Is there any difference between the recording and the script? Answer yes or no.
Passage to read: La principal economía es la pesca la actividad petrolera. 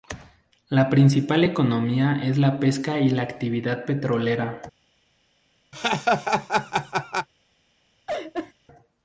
yes